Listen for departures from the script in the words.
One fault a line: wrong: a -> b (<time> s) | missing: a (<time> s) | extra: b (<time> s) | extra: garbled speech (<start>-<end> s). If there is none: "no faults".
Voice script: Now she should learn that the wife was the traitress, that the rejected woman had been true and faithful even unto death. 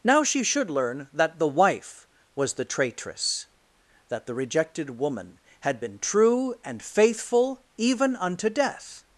no faults